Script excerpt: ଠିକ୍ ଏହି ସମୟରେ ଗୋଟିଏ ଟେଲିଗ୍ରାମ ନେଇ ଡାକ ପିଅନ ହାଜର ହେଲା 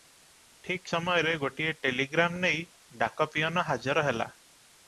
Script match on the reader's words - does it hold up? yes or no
no